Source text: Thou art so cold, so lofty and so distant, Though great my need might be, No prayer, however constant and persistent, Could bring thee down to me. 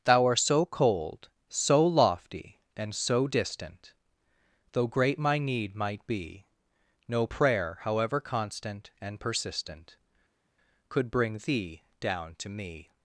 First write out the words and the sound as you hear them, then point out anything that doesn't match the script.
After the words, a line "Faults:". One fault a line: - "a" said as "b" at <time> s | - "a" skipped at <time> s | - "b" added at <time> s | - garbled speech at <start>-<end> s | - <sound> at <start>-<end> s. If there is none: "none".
Thou art so cold, so lofty and so distant, Though great my need might be, No prayer, however constant and persistent, Could bring thee down to me.
Faults:
none